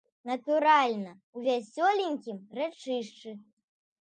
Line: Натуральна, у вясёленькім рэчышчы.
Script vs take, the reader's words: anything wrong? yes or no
no